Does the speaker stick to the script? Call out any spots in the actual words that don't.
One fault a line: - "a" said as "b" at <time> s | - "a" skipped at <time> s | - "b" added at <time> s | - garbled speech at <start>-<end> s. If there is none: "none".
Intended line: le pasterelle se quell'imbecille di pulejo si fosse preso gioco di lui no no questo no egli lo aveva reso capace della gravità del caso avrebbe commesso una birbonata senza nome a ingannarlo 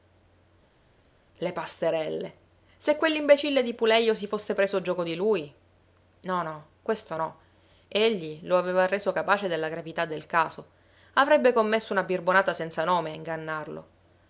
none